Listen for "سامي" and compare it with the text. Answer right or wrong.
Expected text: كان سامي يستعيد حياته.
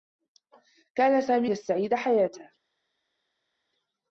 right